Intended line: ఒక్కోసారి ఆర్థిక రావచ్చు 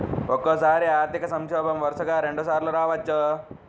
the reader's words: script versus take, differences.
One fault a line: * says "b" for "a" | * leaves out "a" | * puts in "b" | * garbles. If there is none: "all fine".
* puts in "సంక్షోభం వరుసగా రెండుసార్లు"